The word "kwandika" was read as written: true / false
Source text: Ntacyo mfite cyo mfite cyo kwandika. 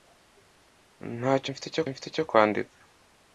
true